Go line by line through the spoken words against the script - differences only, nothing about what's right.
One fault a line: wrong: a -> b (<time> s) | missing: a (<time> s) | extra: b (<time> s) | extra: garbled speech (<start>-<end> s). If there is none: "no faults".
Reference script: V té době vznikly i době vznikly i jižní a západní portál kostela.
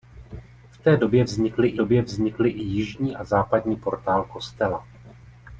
no faults